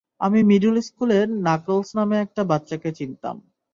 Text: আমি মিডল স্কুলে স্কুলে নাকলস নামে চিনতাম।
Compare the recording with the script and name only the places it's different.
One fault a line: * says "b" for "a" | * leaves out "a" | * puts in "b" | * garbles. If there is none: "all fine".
* leaves out "স্কুলে"
* puts in "একটা বাচ্চাকে"